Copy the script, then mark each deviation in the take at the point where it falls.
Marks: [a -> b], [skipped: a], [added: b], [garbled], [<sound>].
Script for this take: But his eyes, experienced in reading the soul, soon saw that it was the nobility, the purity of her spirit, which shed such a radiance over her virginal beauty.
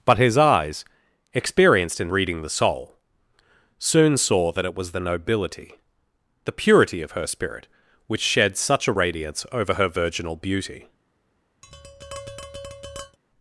But his eyes, experienced in reading the soul, soon saw that it was the nobility, the purity of her spirit, which shed such a radiance over her virginal beauty. [tap]